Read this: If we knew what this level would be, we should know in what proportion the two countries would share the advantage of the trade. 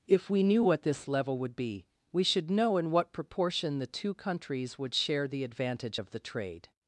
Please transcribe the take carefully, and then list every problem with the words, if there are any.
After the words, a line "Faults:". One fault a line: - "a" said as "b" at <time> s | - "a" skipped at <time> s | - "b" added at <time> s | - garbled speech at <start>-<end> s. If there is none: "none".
If we knew what this level would be, we should know in what proportion the two countries would share the advantage of the trade.
Faults:
none